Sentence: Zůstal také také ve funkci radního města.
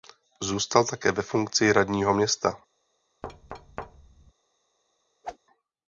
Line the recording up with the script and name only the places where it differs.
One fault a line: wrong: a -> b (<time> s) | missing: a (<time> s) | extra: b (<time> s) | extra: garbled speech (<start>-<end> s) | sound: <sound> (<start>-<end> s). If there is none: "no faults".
missing: také (1.1 s)
sound: thud (3.2-4.3 s)
sound: whoosh (5.2-5.4 s)